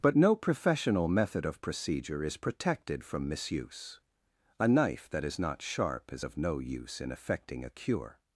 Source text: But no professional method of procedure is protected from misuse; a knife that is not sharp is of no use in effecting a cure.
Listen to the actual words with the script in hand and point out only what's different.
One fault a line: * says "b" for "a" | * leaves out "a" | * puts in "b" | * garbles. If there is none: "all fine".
all fine